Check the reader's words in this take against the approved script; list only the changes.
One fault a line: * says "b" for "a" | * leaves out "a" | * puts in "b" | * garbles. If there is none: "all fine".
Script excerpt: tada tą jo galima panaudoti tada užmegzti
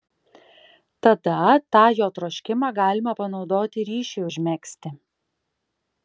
* puts in "troškimą"
* says "ryšiui" for "tada"